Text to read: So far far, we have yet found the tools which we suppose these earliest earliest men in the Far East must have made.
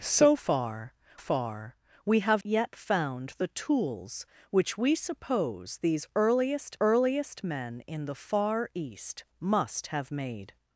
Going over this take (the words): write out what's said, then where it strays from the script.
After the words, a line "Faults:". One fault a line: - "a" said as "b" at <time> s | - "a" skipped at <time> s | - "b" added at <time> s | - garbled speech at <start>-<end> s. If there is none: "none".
So far far, we have yet found the tools which we suppose these earliest earliest men in the Far East must have made.
Faults:
none